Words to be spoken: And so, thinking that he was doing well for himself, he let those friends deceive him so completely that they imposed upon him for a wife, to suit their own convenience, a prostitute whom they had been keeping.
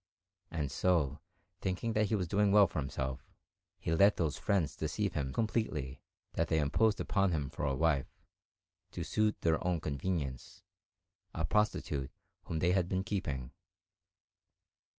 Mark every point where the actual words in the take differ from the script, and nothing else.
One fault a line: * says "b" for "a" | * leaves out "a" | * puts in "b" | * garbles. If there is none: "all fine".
* leaves out "so"